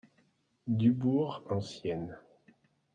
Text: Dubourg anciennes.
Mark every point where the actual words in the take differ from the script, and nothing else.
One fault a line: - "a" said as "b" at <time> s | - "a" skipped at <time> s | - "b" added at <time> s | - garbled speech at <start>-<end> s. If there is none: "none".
none